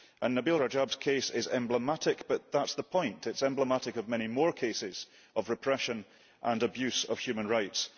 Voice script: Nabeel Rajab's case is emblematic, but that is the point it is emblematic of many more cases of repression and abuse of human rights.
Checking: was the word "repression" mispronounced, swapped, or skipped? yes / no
no